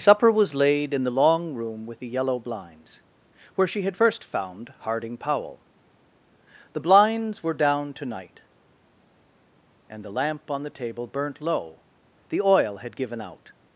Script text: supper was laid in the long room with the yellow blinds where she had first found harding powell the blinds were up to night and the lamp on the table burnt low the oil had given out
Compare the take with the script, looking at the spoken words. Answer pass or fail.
fail